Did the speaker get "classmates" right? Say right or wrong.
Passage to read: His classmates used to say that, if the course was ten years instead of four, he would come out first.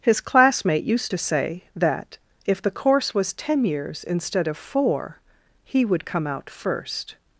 wrong